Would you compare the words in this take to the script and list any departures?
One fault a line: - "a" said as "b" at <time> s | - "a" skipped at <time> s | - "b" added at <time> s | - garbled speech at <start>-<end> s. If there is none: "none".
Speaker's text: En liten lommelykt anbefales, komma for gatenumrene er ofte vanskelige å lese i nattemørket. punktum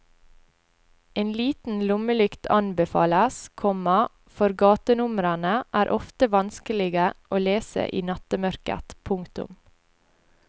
none